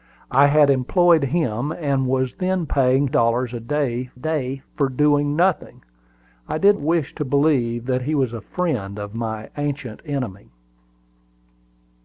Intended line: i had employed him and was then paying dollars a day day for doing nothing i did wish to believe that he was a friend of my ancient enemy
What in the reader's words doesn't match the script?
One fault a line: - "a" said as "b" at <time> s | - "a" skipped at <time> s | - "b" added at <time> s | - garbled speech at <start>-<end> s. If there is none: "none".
none